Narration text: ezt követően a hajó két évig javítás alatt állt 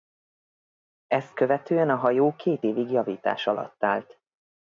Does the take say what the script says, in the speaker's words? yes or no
yes